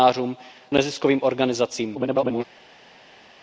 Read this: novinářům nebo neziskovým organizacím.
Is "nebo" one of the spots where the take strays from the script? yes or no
yes